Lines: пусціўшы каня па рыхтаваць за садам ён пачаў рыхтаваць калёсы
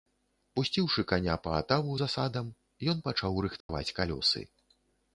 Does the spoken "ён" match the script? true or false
true